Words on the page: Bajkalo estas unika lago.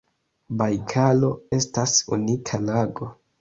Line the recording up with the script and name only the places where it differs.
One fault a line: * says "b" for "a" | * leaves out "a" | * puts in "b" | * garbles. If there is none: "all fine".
all fine